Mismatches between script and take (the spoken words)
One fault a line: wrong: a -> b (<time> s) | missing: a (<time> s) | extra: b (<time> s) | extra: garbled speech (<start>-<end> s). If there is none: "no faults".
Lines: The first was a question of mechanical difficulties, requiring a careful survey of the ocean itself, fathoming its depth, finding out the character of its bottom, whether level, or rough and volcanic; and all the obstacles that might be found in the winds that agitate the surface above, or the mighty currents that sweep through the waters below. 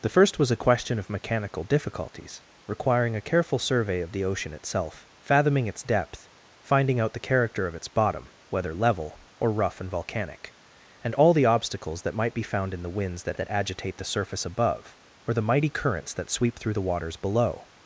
extra: that (13.4 s)